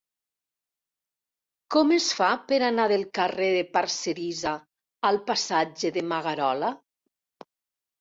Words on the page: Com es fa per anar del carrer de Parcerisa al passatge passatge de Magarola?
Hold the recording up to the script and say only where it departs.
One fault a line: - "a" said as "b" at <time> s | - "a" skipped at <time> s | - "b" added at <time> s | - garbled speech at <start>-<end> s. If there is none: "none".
- "passatge" skipped at 6.0 s